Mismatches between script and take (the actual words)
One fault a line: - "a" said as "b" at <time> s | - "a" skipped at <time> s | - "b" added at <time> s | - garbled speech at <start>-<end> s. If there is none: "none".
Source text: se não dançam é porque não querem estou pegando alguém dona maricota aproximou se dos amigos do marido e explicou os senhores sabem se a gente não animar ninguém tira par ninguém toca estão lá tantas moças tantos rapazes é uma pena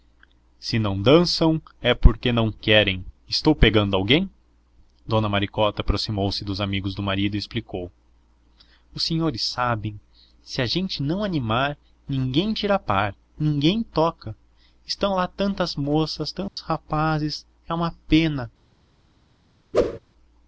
none